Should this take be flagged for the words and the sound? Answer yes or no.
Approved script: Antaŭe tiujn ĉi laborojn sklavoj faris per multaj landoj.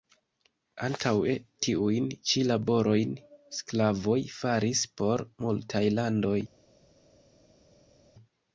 yes